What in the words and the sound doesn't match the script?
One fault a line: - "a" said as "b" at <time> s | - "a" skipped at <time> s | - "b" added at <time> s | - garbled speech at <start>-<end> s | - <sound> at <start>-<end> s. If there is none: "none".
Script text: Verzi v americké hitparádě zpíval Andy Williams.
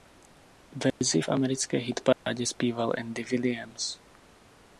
- dropout at 0.9-1.0 s
- dropout at 2.1-2.3 s